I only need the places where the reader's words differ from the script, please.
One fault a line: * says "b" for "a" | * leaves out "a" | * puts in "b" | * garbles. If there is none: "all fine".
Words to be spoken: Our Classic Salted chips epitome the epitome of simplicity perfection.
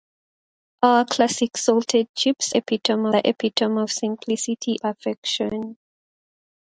all fine